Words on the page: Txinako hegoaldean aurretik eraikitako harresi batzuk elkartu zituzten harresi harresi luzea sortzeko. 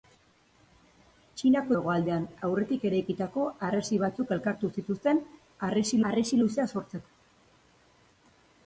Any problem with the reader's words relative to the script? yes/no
no